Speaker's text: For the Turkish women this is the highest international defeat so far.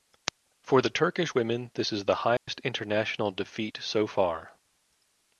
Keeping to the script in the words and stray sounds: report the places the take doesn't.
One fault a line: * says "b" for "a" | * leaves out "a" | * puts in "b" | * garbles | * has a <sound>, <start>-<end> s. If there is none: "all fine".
* has a dropout, 2.4-2.5 s